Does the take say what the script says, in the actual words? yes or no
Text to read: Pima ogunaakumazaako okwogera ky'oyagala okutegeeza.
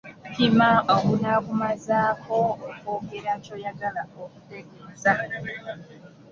yes